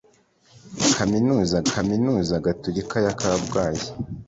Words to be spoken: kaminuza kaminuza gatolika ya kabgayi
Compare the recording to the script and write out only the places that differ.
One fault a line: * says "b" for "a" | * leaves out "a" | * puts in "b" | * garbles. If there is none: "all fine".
all fine